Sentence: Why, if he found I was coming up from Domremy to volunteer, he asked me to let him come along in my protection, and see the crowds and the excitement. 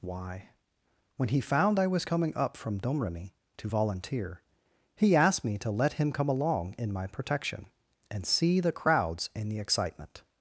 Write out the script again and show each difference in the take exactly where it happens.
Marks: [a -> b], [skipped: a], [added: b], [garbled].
Why, [if -> when] he found I was coming up from Domremy to volunteer, he asked me to let him come along in my protection, and see the crowds and the excitement.